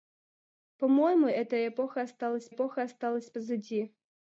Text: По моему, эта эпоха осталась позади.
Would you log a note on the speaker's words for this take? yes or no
yes